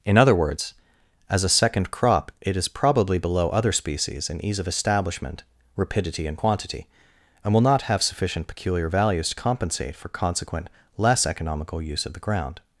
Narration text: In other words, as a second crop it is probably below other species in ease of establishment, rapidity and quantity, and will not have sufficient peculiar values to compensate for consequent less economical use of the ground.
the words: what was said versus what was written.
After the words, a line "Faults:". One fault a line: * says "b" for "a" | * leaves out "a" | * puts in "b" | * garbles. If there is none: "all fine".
In other words, as a second crop it is probably below other species in ease of establishment, rapidity and quantity, and will not have sufficient peculiar values to compensate for consequent less economical use of the ground.
Faults:
all fine